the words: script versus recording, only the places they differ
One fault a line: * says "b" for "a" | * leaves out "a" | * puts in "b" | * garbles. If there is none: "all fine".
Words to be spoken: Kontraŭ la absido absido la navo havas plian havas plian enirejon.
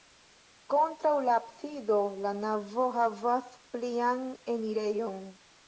* leaves out "absido"
* leaves out "havas plian"